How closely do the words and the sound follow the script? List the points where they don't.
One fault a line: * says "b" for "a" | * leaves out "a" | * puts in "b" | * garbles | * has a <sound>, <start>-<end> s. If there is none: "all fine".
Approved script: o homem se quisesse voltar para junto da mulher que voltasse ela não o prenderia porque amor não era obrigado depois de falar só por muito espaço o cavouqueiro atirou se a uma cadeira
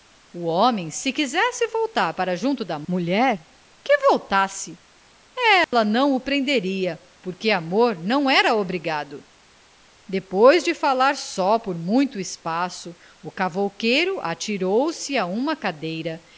* has a dropout, 5.6-5.7 s